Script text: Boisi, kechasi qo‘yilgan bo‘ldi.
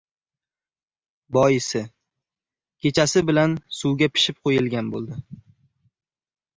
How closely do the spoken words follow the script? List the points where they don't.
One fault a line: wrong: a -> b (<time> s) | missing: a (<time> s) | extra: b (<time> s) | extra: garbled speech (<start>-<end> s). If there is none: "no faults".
extra: bilan suvga pishib (3.3 s)